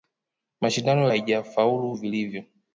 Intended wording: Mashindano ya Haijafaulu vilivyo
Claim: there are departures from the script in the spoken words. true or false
false